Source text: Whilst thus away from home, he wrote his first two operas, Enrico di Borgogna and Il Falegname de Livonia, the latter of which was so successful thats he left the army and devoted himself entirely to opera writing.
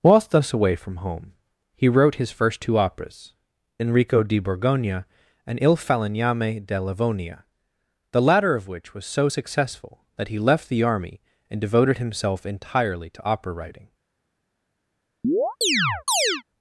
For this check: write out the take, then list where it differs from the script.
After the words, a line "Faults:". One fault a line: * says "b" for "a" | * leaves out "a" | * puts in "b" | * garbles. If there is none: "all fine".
Whilst thus away from home, he wrote his first two operas, Enrico di Borgogna and Il Falegname de Livonia, the latter of which was so successful that he left the army and devoted himself entirely to opera writing.
Faults:
* says "that" for "thats"